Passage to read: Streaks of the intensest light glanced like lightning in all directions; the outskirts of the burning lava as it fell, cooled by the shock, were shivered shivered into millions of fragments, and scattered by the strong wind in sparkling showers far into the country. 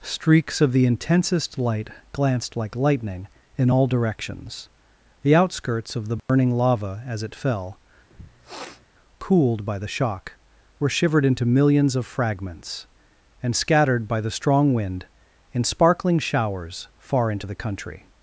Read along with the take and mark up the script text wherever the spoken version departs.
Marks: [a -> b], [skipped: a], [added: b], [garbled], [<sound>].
Streaks of the intensest light glanced like lightning in all directions; the outskirts of the burning [dropout] lava as it fell, [sniff] cooled by the shock, were shivered [skipped: shivered] into millions of fragments, and scattered by the strong wind in sparkling showers far into the country.